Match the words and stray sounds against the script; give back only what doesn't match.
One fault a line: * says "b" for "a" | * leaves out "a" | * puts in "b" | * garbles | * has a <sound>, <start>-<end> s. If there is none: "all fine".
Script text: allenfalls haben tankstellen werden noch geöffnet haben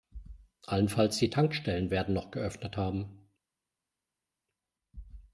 * says "die" for "haben"